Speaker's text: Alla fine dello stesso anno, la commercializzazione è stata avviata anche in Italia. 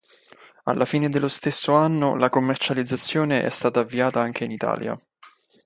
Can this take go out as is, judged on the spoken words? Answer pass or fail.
pass